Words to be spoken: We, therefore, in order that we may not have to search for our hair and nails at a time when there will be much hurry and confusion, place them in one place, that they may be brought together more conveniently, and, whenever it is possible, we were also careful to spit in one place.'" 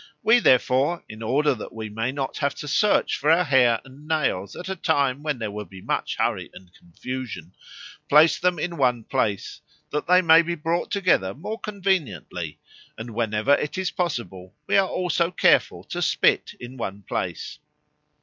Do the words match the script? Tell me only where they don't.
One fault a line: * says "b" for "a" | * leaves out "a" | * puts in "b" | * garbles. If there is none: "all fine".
* says "are" for "were"